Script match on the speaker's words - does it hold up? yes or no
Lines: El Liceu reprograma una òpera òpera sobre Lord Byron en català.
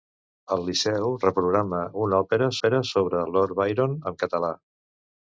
yes